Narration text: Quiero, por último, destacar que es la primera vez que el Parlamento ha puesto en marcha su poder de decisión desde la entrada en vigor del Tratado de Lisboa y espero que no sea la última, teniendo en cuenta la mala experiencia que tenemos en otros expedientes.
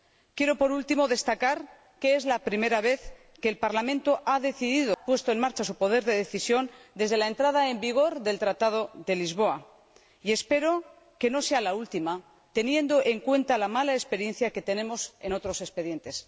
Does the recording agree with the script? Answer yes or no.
yes